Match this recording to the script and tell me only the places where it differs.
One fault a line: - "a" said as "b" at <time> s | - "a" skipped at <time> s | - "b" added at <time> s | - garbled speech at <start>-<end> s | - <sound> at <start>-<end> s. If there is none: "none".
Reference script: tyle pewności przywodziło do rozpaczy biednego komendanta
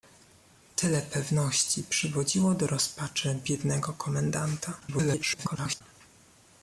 - garbled speech at 4.8-5.8 s